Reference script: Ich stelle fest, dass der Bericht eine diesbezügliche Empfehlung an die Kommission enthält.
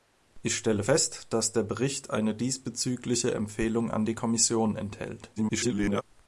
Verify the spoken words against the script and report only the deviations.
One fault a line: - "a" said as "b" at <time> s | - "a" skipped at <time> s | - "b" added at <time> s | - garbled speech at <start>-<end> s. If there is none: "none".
- garbled speech at 5.4-6.0 s